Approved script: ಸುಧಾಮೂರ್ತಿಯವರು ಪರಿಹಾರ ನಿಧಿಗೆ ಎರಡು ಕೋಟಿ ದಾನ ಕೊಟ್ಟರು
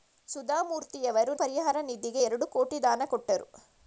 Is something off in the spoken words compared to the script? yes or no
no